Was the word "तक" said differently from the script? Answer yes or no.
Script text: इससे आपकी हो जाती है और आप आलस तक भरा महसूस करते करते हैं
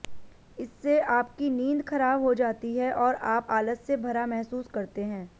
yes